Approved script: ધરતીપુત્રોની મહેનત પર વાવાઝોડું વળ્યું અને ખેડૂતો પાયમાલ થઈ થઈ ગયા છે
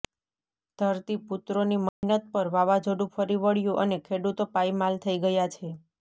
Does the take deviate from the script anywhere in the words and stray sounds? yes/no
yes